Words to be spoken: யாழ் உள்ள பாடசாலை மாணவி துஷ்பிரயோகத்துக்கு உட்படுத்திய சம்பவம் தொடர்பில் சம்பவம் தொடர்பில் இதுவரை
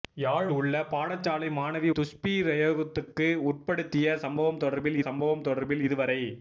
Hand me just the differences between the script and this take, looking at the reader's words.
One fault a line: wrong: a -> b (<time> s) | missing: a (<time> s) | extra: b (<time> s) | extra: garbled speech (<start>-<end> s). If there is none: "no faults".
no faults